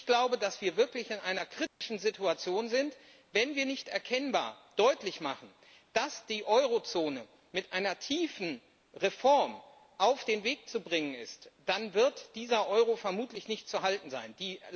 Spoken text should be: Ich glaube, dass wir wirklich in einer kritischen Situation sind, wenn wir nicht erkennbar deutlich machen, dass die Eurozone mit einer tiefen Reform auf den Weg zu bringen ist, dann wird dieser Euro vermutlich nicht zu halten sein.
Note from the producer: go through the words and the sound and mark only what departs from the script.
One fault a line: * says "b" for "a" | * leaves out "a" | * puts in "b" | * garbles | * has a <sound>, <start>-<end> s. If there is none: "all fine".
* has a dropout, 1.7-1.8 s